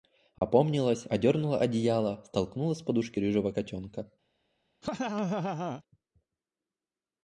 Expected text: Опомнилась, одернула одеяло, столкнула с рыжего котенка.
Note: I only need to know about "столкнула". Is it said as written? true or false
true